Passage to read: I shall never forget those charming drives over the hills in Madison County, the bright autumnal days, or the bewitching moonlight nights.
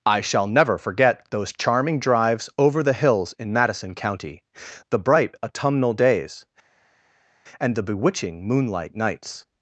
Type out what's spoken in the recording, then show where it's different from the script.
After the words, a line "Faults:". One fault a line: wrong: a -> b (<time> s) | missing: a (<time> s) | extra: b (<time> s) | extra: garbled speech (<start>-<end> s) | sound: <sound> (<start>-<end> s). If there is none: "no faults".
I shall never forget those charming drives over the hills in Madison County, the bright autumnal days, and the bewitching moonlight nights.
Faults:
wrong: or -> and (7.6 s)